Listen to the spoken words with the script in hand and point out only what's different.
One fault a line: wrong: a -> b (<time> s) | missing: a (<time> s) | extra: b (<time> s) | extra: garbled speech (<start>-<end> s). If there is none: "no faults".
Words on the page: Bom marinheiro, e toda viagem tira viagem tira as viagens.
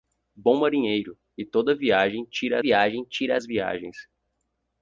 no faults